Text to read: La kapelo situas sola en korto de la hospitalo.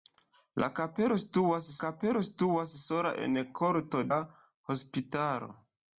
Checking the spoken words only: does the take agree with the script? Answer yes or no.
no